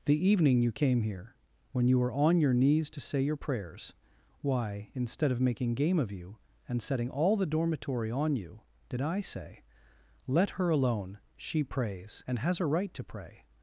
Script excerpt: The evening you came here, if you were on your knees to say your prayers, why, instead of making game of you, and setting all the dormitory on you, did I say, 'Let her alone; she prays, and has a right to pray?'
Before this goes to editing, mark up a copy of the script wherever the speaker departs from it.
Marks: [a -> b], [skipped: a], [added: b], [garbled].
The evening you came here, [if -> when] you were on your knees to say your prayers, why, instead of making game of you, and setting all the dormitory on you, did I say, 'Let her alone; she prays, and has a right to pray?'